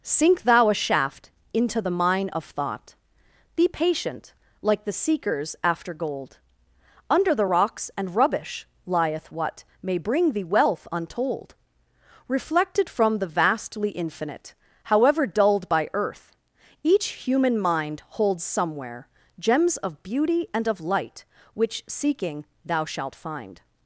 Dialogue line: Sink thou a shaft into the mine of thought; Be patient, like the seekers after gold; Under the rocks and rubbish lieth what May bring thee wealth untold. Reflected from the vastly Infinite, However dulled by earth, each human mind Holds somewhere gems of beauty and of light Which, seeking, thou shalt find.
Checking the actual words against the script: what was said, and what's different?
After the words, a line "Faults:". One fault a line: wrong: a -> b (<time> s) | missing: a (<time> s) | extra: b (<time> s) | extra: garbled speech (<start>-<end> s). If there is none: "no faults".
Sink thou a shaft into the mine of thought; Be patient, like the seekers after gold; Under the rocks and rubbish lieth what May bring thee wealth untold. Reflected from the vastly Infinite, However dulled by earth, each human mind Holds somewhere gems of beauty and of light Which, seeking, thou shalt find.
Faults:
no faults